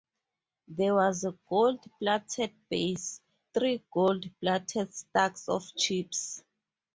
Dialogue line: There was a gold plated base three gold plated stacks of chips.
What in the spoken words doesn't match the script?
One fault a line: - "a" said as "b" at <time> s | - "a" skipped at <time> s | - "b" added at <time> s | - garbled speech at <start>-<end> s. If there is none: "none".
none